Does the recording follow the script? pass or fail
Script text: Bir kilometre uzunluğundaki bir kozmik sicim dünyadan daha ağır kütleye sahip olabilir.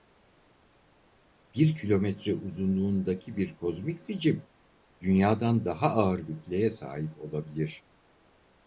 pass